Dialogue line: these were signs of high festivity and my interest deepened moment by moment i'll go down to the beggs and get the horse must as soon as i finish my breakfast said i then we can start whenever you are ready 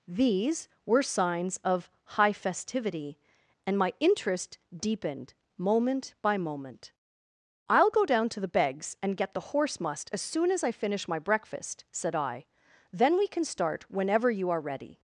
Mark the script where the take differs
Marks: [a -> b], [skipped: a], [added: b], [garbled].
these were signs of high festivity and my interest deepened moment by moment i'll go down to the beggs and get the horse must as soon as i finish my breakfast said i then we can start whenever you are ready